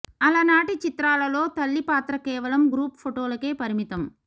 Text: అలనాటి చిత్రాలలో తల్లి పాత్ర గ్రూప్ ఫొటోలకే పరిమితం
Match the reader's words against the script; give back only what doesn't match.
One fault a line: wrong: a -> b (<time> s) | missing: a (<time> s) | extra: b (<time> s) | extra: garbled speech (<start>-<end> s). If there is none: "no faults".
extra: కేవలం (2.2 s)